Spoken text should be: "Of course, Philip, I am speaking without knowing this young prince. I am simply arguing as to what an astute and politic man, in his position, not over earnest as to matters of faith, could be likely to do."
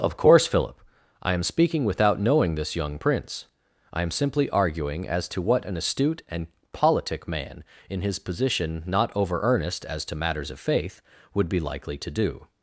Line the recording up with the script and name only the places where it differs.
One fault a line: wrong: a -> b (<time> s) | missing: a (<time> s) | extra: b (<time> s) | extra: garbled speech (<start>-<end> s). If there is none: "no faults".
wrong: could -> would (11.3 s)